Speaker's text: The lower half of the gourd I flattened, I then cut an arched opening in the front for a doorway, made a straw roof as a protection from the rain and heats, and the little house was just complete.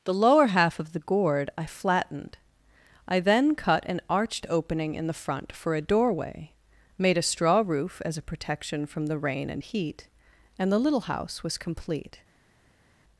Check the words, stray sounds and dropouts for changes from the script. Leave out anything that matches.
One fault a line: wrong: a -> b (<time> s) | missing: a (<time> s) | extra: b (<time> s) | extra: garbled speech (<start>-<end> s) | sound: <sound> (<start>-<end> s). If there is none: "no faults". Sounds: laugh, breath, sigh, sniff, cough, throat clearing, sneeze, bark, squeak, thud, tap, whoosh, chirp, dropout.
wrong: heats -> heat (9.6 s)
missing: just (11.6 s)